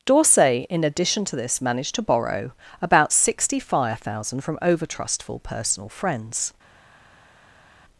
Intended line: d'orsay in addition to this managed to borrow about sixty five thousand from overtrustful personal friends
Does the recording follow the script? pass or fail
fail